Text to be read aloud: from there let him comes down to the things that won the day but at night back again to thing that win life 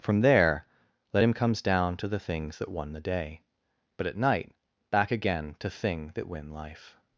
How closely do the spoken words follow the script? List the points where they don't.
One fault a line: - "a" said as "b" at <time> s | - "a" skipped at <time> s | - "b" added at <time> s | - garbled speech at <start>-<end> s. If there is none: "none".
none